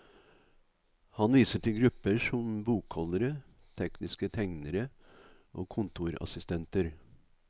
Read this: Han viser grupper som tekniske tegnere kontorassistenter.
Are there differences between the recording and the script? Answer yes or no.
yes